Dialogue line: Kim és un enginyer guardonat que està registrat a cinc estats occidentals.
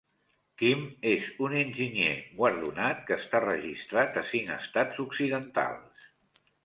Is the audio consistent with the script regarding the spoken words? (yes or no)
yes